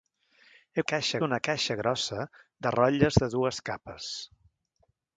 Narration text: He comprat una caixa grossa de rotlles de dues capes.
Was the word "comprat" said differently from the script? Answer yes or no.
yes